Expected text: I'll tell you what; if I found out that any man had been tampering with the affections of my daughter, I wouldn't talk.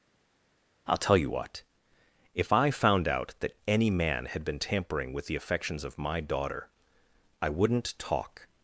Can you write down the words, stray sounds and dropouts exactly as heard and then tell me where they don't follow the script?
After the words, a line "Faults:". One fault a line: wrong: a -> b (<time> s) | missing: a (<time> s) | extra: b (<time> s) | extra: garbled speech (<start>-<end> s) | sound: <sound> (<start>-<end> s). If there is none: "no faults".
I'll tell you what; if I found out that any man had been tampering with the affections of my daughter, I wouldn't talk.
Faults:
no faults